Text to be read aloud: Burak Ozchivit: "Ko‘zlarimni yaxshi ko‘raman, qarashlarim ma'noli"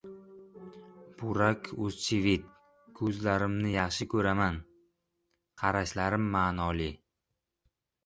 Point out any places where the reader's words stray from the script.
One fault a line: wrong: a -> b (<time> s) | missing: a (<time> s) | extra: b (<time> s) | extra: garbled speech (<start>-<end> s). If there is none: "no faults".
no faults